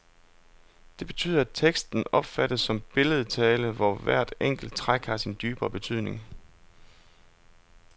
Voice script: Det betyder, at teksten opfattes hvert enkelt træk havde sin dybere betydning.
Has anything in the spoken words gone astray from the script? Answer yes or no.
yes